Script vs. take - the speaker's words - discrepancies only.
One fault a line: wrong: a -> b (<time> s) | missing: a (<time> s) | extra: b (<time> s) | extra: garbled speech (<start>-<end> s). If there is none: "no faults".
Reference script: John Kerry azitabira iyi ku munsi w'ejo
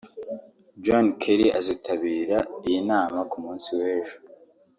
extra: nama (2.9 s)